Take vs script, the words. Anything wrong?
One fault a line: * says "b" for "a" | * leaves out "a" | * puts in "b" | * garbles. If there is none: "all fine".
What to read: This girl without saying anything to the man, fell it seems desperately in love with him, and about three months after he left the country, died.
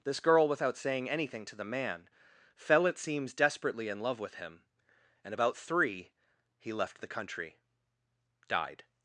* leaves out "months after"